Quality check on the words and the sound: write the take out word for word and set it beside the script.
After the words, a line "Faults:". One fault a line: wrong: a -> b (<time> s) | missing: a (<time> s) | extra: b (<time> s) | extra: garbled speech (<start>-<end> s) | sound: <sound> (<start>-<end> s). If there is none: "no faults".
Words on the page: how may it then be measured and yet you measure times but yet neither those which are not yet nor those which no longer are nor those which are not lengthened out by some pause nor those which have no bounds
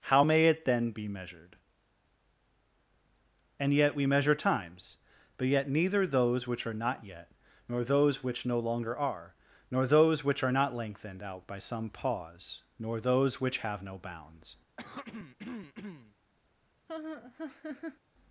how may it then be measured and yet we measure times but yet neither those which are not yet nor those which no longer are nor those which are not lengthened out by some pause nor those which have no bounds
Faults:
wrong: you -> we (3.9 s)
sound: throat clearing (14.8-16.2 s)
sound: laugh (16.9-18.0 s)